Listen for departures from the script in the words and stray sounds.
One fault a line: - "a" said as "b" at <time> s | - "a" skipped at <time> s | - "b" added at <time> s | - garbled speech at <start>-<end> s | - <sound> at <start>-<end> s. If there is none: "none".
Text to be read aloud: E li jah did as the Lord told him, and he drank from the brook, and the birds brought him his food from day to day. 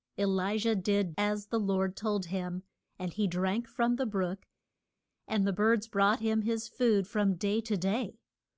none